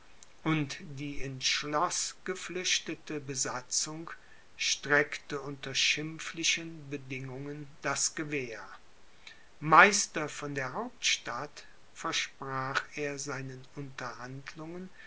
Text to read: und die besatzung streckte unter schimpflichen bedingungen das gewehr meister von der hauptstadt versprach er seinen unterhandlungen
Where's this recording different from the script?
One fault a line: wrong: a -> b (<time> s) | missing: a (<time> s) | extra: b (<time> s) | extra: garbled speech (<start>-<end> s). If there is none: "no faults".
extra: ins schloß geflüchtete (1.2 s)